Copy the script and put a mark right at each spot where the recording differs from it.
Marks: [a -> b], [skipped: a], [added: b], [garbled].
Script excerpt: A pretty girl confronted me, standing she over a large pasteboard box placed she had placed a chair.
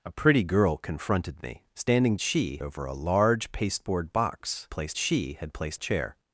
A pretty girl confronted me, standing she over a large pasteboard box placed she had placed a chair.